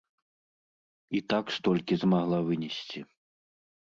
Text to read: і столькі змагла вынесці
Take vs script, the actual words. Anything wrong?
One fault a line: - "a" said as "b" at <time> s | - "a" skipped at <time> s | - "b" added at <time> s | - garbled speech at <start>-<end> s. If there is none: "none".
- "так" added at 1.3 s